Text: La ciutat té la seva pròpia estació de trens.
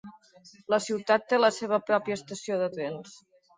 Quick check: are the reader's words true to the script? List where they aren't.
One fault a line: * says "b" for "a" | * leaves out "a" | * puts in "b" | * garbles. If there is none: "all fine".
all fine